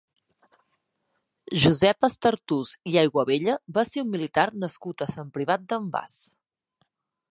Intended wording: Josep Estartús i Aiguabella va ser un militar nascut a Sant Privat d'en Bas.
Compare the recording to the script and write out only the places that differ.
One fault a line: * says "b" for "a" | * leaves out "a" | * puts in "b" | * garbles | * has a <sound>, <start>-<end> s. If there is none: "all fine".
all fine